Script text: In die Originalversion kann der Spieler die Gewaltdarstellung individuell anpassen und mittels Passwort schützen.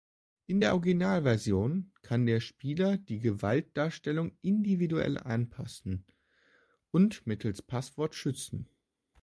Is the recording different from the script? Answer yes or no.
yes